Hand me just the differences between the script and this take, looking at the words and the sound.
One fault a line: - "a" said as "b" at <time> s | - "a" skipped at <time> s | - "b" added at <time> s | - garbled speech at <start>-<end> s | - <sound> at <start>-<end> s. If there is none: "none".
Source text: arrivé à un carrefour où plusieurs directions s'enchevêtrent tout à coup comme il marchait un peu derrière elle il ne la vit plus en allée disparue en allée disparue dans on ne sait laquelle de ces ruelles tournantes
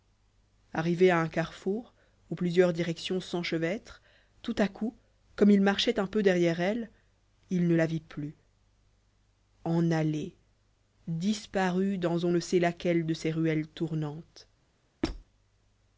- "en allée disparue" skipped at 12.0 s
- squeak at 15.0-15.2 s